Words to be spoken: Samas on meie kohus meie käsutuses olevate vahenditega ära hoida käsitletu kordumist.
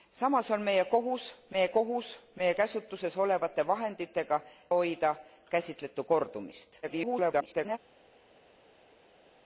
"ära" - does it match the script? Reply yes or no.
no